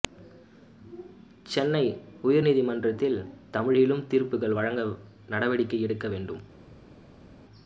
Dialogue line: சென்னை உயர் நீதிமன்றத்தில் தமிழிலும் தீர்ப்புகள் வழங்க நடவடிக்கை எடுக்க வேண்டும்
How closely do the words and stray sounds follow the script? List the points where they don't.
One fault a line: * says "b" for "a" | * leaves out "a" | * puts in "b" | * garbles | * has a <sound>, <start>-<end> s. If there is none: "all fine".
all fine